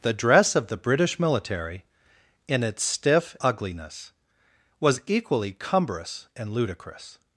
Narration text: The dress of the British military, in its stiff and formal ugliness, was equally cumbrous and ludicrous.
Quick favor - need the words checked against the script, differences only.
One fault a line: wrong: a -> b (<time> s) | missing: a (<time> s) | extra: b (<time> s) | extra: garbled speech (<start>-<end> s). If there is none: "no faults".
missing: and formal (3.4 s)